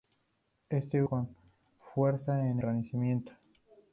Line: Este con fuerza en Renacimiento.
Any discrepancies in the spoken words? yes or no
no